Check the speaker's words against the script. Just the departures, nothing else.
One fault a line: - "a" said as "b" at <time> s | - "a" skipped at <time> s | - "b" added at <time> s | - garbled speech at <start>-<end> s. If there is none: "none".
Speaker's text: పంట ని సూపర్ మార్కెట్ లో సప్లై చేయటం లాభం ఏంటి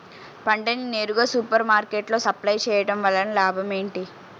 - "నేరుగా" added at 0.9 s
- "వలన" added at 3.0 s